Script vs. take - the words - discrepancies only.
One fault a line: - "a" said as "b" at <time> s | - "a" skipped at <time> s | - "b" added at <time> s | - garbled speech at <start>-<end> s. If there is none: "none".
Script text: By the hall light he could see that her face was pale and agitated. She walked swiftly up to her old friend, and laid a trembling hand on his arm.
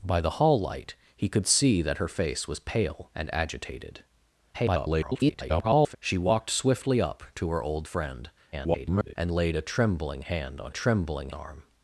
- garbled speech at 4.5-6.0 s
- garbled speech at 8.5-9.2 s
- "his" said as "trembling" at 10.7 s